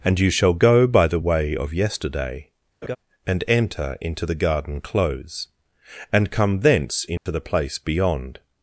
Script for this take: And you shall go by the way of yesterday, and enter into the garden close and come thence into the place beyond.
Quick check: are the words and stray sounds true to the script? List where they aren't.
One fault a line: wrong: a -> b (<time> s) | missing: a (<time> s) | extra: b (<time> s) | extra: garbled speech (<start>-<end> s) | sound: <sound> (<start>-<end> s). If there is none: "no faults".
sound: laugh (2.8-3.0 s)
sound: dropout (7.2-7.3 s)